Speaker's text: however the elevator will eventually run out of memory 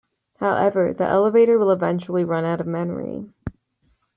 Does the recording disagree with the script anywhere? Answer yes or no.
no